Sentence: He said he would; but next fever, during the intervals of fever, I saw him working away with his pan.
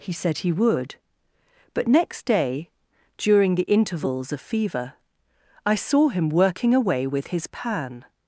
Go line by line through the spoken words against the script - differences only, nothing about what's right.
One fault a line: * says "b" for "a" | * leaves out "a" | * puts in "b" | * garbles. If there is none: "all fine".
* says "day" for "fever"